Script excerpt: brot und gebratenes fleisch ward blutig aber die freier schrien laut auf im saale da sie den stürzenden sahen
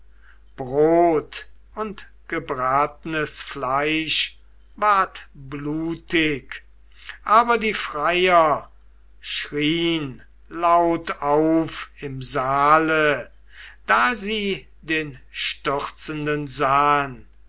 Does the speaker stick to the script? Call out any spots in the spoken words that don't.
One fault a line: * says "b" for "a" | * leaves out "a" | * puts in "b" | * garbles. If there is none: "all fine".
all fine